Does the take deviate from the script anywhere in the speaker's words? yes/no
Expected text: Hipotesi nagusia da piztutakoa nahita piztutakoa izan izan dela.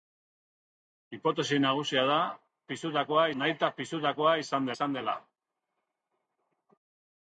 no